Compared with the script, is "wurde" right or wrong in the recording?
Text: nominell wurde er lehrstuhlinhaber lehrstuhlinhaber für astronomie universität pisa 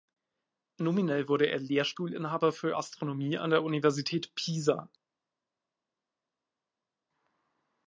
right